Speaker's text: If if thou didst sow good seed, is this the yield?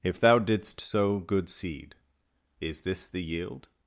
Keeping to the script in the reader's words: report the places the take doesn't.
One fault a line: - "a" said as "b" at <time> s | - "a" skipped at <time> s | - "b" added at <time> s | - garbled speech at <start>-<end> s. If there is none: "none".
- "if" skipped at 0.2 s